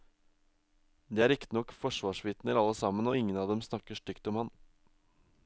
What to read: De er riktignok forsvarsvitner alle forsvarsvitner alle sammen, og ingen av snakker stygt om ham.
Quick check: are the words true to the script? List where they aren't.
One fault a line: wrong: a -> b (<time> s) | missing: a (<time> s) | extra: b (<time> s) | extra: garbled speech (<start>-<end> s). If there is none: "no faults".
missing: forsvarsvitner alle (2.8 s)
extra: dem (3.5 s)